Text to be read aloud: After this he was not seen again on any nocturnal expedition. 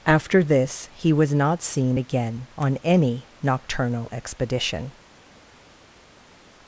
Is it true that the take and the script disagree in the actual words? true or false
false